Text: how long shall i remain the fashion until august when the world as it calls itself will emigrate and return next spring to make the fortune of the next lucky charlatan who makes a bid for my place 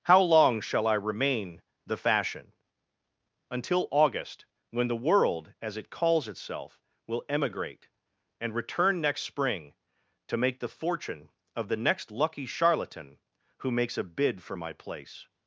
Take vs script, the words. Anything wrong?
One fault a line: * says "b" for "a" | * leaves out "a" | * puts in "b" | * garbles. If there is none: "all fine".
all fine